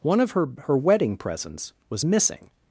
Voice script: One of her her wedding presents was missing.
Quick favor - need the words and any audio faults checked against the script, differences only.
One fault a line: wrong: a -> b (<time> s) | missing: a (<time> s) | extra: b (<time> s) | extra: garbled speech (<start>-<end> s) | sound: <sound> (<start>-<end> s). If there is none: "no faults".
no faults